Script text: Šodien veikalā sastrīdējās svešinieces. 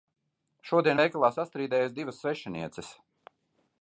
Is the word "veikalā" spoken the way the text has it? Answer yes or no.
yes